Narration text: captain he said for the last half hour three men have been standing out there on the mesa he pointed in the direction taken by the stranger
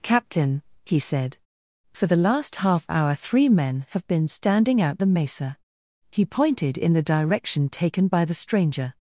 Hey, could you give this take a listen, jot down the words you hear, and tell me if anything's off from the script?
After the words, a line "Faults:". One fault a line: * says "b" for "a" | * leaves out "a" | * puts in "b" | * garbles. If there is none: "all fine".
captain he said for the last half hour three men have been standing out the mesa he pointed in the direction taken by the stranger
Faults:
* leaves out "there on"